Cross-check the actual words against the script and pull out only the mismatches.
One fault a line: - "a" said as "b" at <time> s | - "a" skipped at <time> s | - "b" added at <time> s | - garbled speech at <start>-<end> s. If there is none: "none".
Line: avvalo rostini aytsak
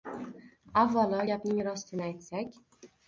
- "gapning" added at 1.3 s